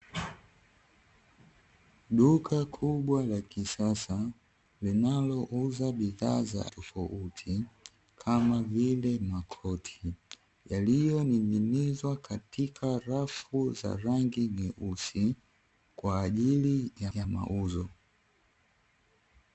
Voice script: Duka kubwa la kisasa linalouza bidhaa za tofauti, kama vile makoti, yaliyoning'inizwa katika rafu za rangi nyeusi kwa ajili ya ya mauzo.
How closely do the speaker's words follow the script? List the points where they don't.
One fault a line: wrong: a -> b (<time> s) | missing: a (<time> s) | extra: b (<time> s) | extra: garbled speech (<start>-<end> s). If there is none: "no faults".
no faults